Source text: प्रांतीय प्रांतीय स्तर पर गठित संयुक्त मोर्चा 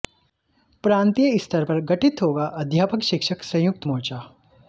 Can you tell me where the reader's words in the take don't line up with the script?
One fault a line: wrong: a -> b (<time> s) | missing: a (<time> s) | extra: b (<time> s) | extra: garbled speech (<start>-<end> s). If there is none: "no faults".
missing: प्रांतीय (1.4 s)
extra: होगा अध्यापक शिक्षक (2.2 s)